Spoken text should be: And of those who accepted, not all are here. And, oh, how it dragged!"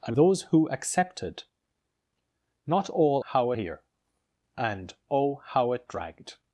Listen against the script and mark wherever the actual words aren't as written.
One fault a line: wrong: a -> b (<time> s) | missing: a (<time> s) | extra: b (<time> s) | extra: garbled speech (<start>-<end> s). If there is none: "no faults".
missing: of (0.2 s)
wrong: are -> how (3.2 s)